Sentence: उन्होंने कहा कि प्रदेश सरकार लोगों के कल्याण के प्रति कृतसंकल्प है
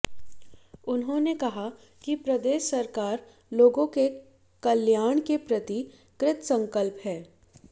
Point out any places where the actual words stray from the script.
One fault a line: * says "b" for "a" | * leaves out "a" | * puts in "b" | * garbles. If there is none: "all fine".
all fine